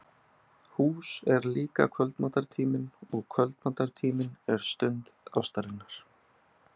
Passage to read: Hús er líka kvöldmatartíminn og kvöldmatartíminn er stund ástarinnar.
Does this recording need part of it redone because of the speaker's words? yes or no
no